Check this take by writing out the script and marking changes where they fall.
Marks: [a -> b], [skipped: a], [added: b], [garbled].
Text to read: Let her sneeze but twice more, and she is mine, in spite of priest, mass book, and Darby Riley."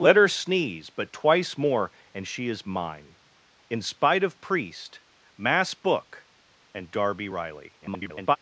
Let her sneeze but twice more, and she is mine, in spite of priest, mass book, and Darby Riley." [garbled]